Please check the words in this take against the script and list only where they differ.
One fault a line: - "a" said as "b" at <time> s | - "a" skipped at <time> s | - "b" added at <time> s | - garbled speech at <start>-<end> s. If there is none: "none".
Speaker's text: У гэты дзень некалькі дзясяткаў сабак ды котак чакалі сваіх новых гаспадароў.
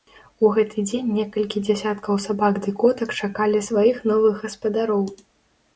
none